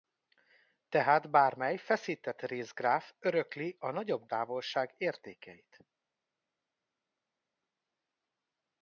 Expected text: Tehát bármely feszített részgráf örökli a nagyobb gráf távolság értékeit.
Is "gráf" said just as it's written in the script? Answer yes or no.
no